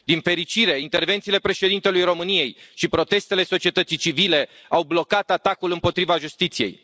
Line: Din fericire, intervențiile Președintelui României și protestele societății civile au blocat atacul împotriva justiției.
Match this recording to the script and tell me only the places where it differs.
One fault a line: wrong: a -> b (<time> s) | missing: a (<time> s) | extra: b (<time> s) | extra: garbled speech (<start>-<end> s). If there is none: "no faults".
no faults